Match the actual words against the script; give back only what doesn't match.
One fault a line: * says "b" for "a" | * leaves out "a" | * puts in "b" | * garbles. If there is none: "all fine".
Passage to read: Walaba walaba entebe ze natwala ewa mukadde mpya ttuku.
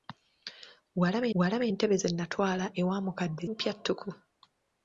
all fine